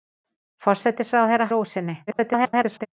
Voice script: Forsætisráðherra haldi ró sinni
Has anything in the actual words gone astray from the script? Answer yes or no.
yes